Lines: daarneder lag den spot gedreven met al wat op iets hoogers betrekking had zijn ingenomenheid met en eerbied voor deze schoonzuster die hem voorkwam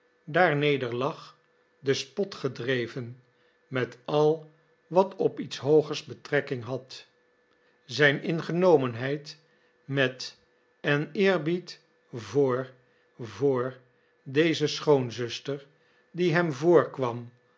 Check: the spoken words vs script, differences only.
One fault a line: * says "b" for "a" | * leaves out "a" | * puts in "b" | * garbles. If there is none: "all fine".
* puts in "voor"